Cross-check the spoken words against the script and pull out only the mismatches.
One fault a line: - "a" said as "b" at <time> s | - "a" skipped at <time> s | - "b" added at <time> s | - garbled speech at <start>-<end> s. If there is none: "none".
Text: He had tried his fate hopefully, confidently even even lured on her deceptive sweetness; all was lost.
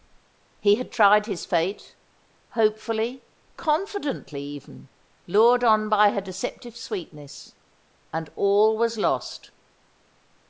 - "even" skipped at 4.9 s
- "by" added at 5.9 s
- "and" added at 8.1 s